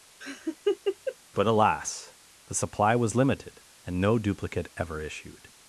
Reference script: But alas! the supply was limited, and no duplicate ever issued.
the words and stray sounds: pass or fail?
fail